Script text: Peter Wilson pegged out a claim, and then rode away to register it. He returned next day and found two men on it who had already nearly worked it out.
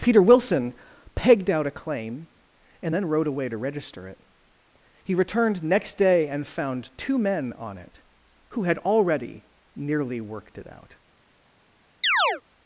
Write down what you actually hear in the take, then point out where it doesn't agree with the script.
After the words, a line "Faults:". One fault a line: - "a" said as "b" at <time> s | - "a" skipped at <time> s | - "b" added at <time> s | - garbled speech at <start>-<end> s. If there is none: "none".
Peter Wilson pegged out a claim, and then rode away to register it. He returned next day and found two men on it who had already nearly worked it out.
Faults:
none